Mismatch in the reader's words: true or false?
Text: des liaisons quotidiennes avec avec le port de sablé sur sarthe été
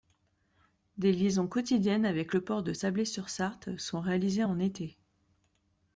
true